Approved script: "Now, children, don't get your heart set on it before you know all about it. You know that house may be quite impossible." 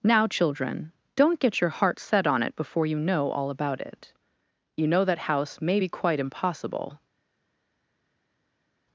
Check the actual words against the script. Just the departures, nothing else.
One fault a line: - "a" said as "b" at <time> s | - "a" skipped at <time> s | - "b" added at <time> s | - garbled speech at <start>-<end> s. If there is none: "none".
none